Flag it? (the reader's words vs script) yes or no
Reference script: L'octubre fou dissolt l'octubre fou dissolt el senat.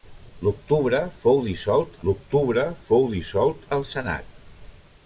no